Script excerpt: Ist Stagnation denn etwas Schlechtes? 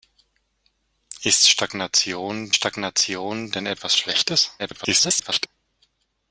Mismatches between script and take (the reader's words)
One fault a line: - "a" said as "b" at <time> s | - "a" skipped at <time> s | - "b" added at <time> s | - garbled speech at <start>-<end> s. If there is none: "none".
- "Stagnation" added at 2.5 s
- garbled speech at 4.6-5.5 s